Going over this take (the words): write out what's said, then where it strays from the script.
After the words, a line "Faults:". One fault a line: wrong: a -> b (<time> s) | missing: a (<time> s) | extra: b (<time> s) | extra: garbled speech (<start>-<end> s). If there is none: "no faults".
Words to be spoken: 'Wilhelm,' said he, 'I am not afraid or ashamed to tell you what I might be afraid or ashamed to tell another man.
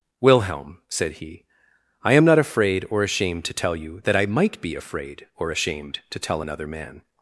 'Wilhelm,' said he, 'I am not afraid or ashamed to tell you that I might be afraid or ashamed to tell another man.
Faults:
wrong: what -> that (4.0 s)